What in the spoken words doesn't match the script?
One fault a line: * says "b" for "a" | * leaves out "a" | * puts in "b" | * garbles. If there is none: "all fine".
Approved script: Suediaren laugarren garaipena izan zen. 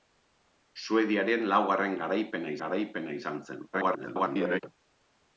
* puts in "garaipena"
* garbles